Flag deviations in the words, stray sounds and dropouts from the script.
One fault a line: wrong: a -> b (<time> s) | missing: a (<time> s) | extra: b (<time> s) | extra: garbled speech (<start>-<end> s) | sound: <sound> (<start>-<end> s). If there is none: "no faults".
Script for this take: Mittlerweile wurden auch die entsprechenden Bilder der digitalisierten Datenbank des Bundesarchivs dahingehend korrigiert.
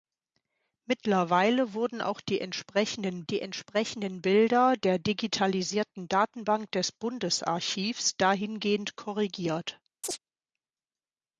extra: die entsprechenden (3.2 s)
sound: chirp (10.0-10.2 s)